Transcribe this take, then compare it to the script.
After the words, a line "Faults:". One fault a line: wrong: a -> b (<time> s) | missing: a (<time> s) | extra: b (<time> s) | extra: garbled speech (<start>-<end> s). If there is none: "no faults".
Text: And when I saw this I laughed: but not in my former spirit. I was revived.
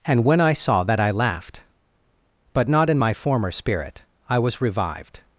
And when I saw that I laughed: but not in my former spirit. I was revived.
Faults:
wrong: this -> that (0.8 s)